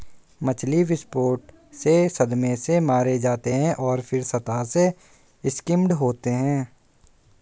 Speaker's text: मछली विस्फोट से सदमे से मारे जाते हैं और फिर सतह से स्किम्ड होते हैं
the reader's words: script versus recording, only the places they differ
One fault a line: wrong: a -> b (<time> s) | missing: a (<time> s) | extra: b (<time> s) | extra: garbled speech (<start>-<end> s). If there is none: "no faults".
no faults